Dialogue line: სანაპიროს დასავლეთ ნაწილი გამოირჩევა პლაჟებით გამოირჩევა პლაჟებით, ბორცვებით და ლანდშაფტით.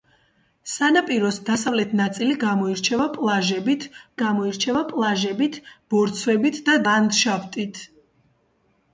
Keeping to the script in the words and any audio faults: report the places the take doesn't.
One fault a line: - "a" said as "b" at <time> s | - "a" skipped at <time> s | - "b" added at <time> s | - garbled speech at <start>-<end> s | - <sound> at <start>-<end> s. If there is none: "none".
none